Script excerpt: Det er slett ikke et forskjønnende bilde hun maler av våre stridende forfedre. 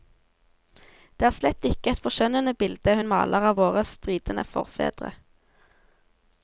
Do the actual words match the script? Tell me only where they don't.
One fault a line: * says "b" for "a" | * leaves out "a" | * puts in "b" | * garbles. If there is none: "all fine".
all fine